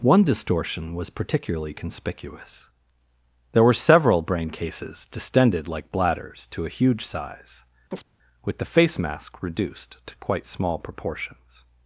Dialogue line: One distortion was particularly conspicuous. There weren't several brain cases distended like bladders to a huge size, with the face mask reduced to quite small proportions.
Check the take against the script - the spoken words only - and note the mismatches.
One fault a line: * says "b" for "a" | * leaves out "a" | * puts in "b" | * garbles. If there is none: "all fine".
* says "were" for "weren't"